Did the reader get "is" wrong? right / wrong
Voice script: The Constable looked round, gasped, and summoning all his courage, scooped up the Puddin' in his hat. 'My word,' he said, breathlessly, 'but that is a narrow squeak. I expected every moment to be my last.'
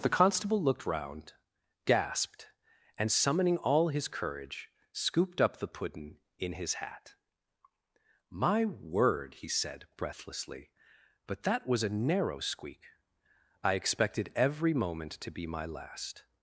wrong